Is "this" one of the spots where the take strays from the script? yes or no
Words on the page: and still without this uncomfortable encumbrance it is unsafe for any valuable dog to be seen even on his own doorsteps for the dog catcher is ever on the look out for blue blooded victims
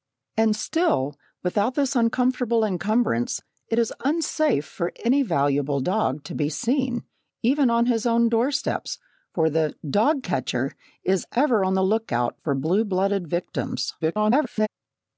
no